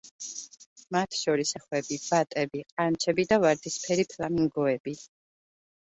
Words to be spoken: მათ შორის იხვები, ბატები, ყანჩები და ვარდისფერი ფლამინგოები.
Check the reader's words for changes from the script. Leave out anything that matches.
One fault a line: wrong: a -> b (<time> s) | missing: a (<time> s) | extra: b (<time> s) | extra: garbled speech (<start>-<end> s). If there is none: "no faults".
no faults